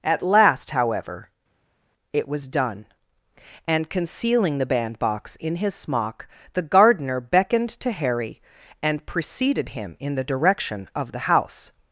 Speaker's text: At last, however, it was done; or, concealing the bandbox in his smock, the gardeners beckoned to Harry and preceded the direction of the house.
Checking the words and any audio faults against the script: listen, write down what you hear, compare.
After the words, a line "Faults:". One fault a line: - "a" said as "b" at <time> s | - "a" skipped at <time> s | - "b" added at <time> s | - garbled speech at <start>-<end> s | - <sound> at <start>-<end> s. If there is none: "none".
At last, however, it was done; and, concealing the bandbox in his smock, the gardener beckoned to Harry and preceded him in the direction of the house.
Faults:
- "or" said as "and" at 3.7 s
- "gardeners" said as "gardener" at 6.6 s
- "him in" added at 9.7 s